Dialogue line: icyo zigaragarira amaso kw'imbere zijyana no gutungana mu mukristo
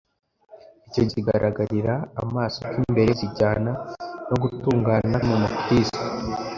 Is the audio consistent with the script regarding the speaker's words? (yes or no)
yes